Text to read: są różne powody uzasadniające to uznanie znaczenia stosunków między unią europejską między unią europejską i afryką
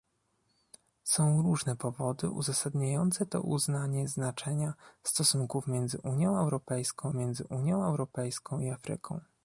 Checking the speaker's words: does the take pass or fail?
pass